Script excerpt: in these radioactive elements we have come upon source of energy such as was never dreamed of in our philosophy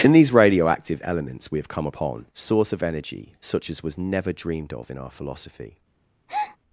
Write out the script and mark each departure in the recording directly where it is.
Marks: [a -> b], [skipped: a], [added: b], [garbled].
in these radioactive elements we have come upon source of energy such as was never dreamed of in our philosophy